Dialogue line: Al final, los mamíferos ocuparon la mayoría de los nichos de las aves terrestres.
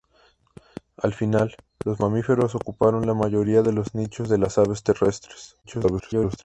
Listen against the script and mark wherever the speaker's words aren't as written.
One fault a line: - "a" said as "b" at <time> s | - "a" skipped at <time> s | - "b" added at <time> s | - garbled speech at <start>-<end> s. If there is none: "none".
- garbled speech at 5.6-6.4 s